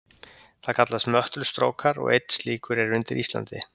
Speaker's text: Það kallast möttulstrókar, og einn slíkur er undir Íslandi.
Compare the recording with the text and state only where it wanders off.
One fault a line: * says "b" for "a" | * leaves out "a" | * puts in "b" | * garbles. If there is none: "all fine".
all fine